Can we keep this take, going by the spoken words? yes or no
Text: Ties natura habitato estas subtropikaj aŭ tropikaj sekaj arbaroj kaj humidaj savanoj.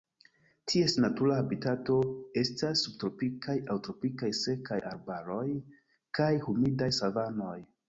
yes